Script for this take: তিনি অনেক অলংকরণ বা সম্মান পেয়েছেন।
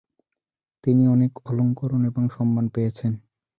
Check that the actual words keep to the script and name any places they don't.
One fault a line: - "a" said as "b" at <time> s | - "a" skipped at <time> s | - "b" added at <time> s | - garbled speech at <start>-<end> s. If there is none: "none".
- "বা" said as "এবং" at 2.0 s